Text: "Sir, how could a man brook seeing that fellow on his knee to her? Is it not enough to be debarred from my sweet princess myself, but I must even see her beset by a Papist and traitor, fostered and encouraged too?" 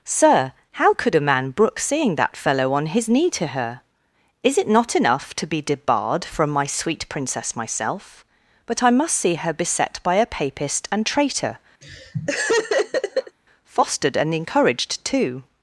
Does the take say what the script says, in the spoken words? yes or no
no